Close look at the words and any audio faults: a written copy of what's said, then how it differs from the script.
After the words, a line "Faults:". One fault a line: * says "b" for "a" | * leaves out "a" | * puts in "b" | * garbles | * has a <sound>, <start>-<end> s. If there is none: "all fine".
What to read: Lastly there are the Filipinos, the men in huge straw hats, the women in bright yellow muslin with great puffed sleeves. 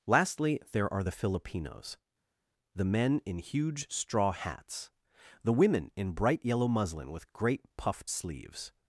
Lastly there are the Filipinos, the men in huge straw hats, the women in bright yellow muslin with great puffed sleeves.
Faults:
all fine